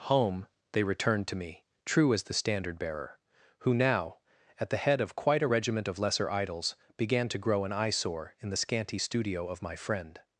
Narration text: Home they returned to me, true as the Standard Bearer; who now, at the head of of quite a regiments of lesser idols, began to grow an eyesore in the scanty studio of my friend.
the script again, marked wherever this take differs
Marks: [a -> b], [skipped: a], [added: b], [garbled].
Home they returned to me, true as the Standard Bearer; who now, at the head of [skipped: of] quite a [regiments -> regiment] of lesser idols, began to grow an eyesore in the scanty studio of my friend.